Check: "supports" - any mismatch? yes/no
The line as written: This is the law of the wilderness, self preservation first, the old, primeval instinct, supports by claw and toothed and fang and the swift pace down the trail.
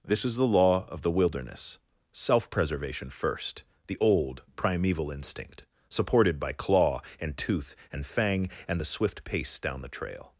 yes